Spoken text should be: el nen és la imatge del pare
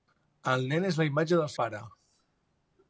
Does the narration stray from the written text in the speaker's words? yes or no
no